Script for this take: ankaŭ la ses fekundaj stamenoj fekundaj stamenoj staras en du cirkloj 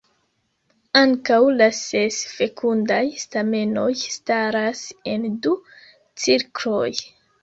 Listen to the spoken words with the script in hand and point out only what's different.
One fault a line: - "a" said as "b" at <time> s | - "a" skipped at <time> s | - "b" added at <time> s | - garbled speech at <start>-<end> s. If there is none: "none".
- "fekundaj stamenoj" skipped at 3.9 s